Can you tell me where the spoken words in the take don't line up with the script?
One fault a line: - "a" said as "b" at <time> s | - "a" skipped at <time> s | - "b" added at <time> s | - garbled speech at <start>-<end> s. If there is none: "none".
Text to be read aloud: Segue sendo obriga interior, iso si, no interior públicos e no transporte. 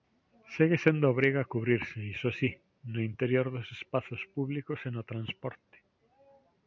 - "interior" said as "cubrirse" at 1.5 s
- "dos espazos" added at 3.5 s